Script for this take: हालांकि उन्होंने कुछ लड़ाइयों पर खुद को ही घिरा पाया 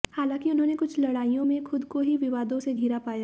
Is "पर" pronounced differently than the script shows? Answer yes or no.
yes